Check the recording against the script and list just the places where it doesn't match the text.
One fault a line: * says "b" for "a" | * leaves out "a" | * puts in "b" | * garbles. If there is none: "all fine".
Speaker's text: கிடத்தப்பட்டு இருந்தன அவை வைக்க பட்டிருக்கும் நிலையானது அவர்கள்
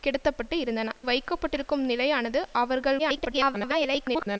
* leaves out "அவை"
* garbles